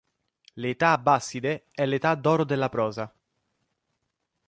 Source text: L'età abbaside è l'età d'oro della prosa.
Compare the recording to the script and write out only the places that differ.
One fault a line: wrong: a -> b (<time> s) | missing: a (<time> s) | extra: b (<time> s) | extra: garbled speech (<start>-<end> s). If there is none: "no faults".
no faults